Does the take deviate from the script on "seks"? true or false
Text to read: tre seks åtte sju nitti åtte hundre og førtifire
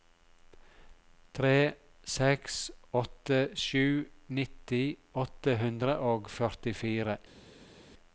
false